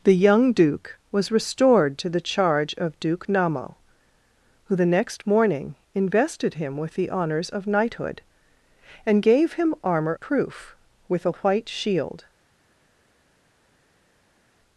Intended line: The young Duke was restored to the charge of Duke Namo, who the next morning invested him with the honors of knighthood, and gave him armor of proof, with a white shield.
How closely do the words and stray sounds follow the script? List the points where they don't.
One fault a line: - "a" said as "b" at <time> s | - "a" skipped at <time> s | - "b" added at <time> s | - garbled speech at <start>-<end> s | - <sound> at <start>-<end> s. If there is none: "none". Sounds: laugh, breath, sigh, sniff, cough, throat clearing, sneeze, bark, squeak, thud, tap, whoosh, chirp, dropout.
- "of" skipped at 10.2 s